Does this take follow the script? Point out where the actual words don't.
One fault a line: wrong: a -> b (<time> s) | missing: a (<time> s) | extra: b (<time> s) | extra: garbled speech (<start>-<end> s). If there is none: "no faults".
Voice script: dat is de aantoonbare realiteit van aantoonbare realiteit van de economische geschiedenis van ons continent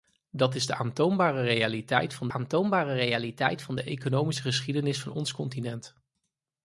no faults